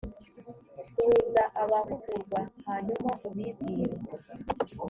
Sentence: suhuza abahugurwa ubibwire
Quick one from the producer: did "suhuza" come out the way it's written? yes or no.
yes